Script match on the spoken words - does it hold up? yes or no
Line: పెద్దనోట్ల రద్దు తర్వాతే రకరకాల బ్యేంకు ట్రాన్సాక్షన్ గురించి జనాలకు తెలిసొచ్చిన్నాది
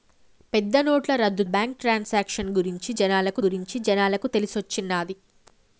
no